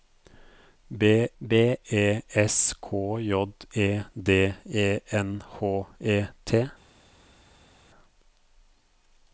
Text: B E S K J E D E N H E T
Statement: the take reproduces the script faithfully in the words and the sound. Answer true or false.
false